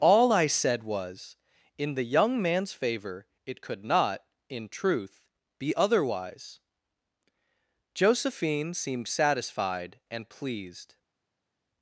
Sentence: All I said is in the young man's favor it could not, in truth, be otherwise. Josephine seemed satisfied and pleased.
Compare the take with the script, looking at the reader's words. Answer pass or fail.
fail